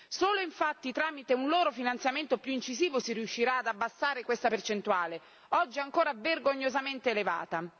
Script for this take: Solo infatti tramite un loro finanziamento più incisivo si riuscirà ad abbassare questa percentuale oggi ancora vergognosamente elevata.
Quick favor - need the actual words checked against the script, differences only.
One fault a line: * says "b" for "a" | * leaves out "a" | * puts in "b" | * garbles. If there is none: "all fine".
all fine